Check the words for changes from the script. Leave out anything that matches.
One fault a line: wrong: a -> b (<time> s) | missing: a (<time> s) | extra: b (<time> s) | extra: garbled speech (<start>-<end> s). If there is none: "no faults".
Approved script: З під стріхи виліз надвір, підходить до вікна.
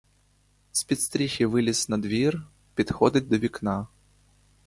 no faults